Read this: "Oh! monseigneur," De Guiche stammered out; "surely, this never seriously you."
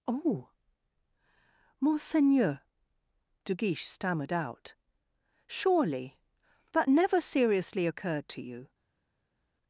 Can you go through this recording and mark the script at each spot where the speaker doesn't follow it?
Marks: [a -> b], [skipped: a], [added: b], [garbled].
"Oh! monseigneur," De Guiche stammered out; "surely, [this -> that] never seriously [added: occurred to] you."